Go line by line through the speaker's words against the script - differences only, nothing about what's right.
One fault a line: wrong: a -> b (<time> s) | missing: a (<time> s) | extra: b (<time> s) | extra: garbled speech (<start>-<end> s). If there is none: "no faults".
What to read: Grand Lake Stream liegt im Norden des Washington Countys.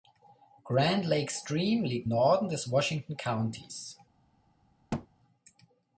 missing: im (2.1 s)